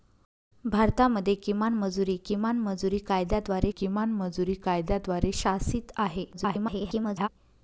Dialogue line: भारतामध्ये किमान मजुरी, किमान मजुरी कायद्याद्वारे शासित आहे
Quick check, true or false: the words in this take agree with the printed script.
false